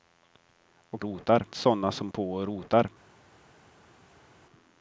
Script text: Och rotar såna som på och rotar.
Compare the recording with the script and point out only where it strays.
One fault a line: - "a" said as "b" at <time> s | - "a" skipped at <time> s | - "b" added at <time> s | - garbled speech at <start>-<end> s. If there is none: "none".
none